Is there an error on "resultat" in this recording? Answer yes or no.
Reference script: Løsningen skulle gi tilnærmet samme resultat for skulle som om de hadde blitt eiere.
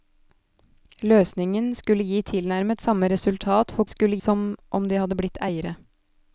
no